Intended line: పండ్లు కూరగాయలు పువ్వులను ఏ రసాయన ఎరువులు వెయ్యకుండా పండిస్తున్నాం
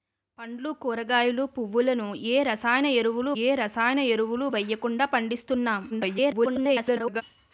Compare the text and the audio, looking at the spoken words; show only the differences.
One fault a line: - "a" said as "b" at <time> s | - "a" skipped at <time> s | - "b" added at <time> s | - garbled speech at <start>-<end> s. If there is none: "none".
- "ఏ రసాయన ఎరువులు" added at 3.4 s
- garbled speech at 5.9-7.2 s